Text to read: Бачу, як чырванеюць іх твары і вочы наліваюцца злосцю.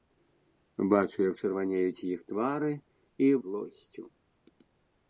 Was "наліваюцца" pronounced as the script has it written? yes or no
no